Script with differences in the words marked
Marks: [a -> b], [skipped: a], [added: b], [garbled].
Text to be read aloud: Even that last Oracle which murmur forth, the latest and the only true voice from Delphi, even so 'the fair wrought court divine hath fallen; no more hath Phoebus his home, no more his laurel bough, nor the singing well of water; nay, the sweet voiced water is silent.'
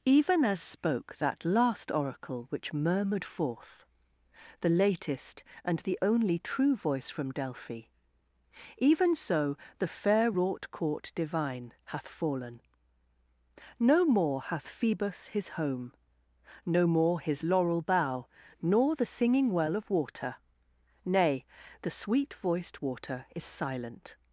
Even [added: as spoke] that last Oracle which [murmur -> murmured] forth, the latest and the only true voice from Delphi, even so 'the fair wrought court divine hath fallen; no more hath Phoebus his home, no more his laurel bough, nor the singing well of water; nay, the sweet voiced water is silent.'